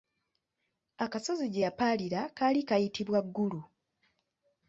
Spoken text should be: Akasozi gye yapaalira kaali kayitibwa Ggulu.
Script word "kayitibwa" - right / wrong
right